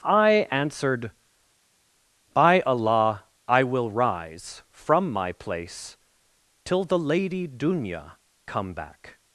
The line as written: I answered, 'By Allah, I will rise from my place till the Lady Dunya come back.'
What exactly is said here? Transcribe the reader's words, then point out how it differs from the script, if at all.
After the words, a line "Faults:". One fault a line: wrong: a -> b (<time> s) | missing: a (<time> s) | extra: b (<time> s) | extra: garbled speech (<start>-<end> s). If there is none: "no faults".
I answered, 'By Allah, I will rise from my place till the Lady Dunya come back.'
Faults:
no faults